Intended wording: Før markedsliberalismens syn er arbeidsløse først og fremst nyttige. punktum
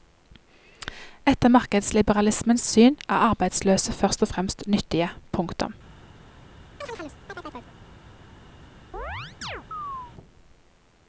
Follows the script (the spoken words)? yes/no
no